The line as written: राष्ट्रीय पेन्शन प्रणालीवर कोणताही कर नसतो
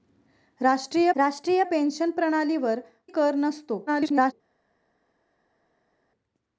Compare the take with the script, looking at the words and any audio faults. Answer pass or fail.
fail